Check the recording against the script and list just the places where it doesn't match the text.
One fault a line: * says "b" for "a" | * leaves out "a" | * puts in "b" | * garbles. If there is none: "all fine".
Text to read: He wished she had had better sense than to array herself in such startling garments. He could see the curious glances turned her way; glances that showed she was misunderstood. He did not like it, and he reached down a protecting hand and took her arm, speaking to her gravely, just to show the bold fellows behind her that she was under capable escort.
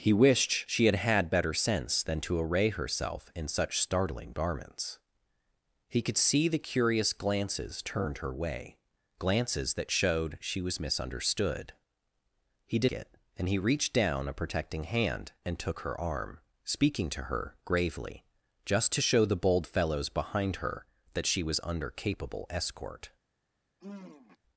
* leaves out "not like"